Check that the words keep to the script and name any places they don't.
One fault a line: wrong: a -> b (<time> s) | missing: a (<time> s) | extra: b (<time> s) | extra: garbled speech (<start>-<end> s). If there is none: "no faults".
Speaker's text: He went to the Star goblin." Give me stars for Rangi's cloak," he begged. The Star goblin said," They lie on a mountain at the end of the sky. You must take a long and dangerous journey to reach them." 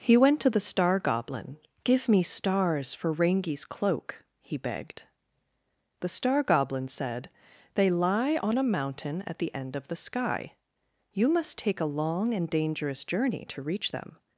no faults